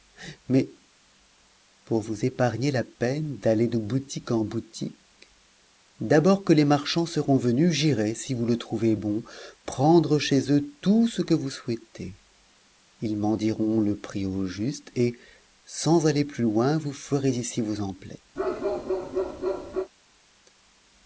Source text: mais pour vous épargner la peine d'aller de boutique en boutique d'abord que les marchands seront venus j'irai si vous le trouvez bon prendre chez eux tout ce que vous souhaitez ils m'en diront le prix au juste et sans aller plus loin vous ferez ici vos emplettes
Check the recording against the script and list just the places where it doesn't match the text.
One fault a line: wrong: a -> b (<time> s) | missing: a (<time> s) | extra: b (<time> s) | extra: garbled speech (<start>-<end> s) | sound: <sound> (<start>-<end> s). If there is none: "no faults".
sound: bark (18.4-19.9 s)